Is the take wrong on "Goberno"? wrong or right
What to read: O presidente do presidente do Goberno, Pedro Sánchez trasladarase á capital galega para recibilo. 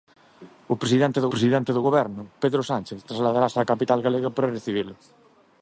right